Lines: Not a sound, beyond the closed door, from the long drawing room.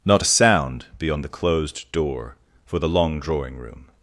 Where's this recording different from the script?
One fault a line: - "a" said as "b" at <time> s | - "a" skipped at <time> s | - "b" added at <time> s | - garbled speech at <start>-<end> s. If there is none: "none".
- "from" said as "for" at 2.6 s